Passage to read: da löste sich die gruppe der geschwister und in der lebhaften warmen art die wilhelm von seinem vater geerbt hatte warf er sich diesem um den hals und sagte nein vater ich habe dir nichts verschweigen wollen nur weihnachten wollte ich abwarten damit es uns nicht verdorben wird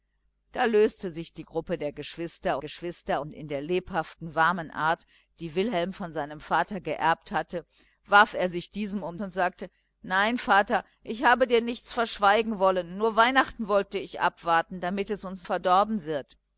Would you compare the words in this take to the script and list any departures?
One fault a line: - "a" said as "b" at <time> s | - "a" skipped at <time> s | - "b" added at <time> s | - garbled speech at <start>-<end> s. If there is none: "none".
- "geschwister" added at 2.6 s
- "den hals" skipped at 9.2 s
- "nicht" skipped at 15.5 s